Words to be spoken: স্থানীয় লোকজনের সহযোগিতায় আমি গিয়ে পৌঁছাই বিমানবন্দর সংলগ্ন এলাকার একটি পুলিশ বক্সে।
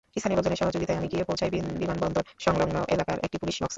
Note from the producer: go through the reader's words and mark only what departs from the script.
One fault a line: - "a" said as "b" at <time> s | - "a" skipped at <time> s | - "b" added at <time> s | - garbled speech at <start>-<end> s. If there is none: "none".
none